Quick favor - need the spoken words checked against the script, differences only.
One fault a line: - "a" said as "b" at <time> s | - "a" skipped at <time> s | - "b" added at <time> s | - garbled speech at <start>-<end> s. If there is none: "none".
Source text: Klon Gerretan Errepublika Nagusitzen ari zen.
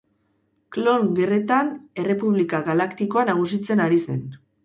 - "Galaktikoa" added at 2.7 s